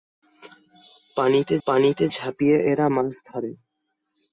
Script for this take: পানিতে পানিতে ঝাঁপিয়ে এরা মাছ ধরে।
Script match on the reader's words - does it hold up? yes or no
yes